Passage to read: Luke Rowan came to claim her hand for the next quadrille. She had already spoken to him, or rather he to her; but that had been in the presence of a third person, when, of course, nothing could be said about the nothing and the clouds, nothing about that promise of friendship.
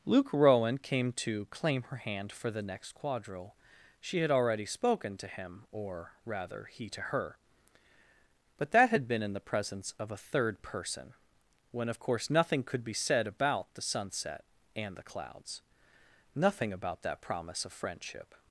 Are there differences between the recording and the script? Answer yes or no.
yes